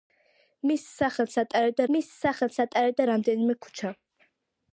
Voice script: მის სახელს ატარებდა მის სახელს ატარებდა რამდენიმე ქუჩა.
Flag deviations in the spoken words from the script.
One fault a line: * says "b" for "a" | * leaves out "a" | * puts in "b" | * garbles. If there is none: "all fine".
all fine